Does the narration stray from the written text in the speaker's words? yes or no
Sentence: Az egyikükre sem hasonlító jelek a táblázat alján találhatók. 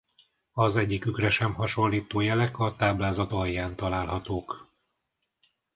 no